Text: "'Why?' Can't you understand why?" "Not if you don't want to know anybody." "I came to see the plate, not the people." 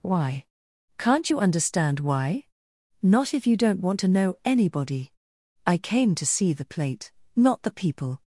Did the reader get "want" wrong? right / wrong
right